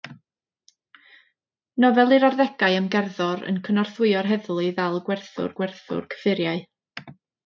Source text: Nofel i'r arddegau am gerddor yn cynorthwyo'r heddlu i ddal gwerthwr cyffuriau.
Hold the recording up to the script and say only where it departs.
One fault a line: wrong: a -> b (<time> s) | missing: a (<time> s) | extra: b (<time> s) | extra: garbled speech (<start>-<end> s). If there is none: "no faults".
extra: gwerthwr (5.6 s)